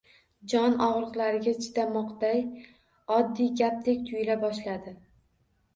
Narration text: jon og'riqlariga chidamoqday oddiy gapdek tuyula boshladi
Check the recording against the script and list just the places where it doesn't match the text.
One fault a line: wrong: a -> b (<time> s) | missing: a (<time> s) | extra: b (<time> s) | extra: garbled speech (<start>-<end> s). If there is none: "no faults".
no faults